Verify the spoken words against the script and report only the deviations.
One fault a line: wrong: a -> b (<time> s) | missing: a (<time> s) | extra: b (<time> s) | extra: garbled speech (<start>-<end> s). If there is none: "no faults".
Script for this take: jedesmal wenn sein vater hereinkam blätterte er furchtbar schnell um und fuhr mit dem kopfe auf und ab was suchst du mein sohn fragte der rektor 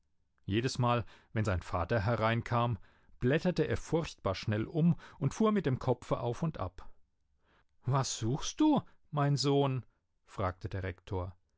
no faults